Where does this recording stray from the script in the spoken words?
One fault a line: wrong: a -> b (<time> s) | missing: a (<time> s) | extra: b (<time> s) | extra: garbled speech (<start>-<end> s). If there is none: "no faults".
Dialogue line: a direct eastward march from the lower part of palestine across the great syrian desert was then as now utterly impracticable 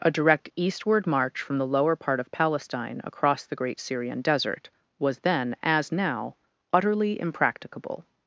no faults